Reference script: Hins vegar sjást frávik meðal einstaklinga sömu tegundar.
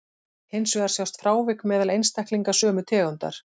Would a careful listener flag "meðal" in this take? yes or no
no